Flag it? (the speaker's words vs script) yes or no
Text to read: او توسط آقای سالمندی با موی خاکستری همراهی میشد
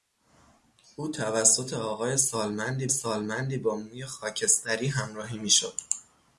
yes